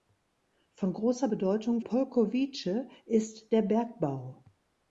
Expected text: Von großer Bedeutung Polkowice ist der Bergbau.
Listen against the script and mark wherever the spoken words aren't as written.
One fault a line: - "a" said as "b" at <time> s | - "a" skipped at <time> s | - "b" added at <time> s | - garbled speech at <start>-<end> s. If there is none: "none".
none